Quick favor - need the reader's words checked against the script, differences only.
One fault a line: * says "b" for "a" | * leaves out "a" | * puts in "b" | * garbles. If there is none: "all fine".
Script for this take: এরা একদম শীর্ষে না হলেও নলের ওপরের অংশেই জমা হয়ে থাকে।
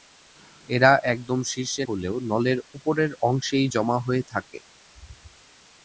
* leaves out "না"